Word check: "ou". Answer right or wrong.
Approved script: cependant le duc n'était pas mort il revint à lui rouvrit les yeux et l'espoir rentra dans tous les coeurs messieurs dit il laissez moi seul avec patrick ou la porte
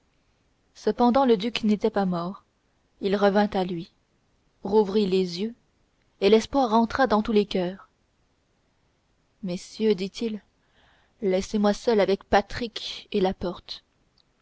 wrong